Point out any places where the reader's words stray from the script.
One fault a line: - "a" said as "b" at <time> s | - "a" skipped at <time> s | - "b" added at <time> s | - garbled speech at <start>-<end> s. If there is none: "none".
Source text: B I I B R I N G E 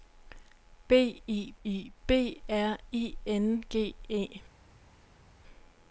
none